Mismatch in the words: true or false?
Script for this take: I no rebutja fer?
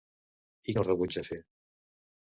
false